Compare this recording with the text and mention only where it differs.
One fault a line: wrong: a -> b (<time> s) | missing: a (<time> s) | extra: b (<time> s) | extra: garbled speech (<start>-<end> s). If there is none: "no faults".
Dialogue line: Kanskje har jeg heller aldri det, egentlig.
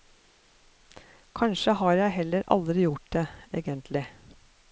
extra: gjort (2.9 s)